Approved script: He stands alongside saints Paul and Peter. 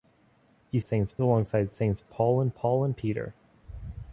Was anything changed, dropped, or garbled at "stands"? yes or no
yes